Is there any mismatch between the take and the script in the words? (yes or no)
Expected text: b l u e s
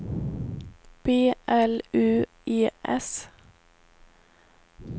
no